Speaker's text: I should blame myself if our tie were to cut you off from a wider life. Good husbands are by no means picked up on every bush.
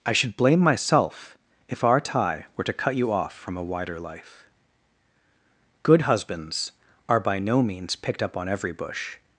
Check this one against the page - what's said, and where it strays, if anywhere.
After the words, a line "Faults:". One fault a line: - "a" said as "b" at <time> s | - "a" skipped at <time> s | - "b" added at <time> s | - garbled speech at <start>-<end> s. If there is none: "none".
I should blame myself if our tie were to cut you off from a wider life. Good husbands are by no means picked up on every bush.
Faults:
none